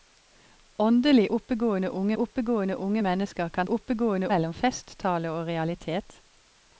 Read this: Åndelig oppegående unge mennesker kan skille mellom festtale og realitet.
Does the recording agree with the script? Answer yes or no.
no